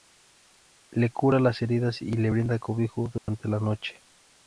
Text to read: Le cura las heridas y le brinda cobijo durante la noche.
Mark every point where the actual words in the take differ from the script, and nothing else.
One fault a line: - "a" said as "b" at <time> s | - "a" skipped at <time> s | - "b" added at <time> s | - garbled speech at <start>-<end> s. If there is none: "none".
none